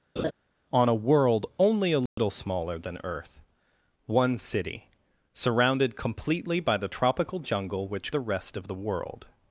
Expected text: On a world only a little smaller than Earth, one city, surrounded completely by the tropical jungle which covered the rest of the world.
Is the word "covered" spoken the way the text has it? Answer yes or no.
no